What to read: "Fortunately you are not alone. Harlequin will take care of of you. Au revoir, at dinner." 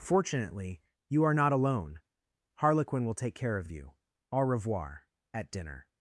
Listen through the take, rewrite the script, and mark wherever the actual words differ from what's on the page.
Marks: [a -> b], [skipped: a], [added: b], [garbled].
"Fortunately you are not alone. Harlequin will take care of of you. Au revoir, at dinner."